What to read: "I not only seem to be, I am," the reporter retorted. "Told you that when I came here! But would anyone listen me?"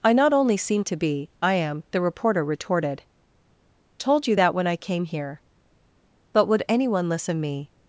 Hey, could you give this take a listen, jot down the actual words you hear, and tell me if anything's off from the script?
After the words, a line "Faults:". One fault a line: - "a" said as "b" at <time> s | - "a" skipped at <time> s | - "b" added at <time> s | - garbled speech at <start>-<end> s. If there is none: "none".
"I not only seem to be, I am," the reporter retorted. "Told you that when I came here! But would anyone listen me?"
Faults:
none